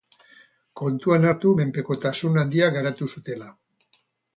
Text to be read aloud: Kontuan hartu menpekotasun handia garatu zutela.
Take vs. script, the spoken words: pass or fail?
pass